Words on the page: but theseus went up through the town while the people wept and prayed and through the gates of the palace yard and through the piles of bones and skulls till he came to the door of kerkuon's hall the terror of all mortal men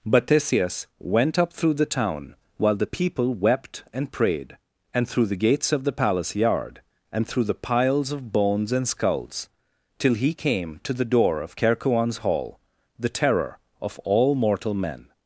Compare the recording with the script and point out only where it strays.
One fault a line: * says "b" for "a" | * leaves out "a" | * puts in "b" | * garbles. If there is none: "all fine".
all fine